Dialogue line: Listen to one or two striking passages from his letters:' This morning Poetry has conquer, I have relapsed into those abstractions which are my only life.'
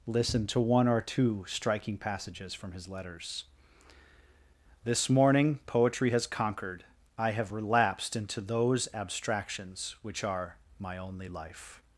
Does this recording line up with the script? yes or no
no